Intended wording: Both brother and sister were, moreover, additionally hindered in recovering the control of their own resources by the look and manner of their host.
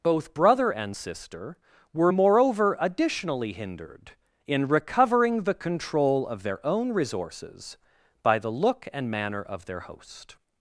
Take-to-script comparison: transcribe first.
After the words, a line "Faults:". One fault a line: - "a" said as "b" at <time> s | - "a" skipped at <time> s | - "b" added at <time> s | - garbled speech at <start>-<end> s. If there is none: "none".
Both brother and sister were, moreover, additionally hindered in recovering the control of their own resources by the look and manner of their host.
Faults:
none